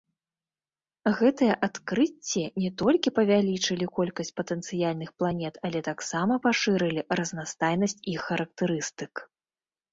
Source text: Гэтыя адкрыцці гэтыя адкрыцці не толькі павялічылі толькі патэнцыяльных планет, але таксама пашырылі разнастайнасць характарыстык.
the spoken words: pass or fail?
fail